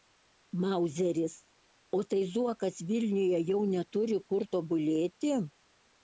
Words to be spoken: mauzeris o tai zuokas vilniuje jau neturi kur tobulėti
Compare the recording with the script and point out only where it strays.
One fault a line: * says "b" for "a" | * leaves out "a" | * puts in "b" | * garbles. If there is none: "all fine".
all fine